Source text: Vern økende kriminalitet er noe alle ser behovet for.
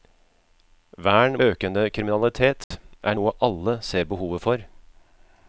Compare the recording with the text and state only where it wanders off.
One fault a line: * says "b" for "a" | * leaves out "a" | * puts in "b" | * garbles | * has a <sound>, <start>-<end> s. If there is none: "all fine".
* has a dropout, 2.6-2.7 s